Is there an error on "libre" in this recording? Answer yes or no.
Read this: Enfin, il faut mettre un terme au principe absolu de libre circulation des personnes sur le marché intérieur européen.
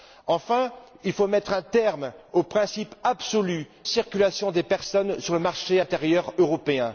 yes